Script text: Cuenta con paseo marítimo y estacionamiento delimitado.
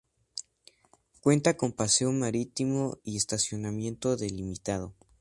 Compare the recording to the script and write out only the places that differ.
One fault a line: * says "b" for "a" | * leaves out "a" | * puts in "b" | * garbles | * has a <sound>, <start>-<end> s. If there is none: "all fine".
all fine